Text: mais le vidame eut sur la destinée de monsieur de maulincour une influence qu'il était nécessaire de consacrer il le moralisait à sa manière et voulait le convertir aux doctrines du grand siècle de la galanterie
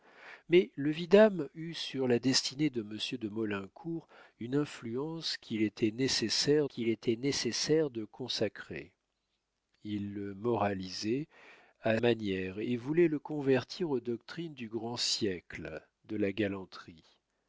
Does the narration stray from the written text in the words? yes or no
yes